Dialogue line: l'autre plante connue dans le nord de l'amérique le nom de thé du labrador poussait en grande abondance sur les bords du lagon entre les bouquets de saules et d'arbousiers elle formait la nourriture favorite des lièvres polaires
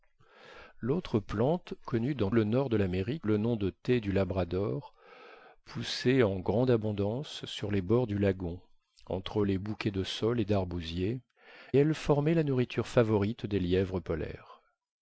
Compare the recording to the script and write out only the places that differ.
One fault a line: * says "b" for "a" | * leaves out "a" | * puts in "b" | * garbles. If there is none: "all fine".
all fine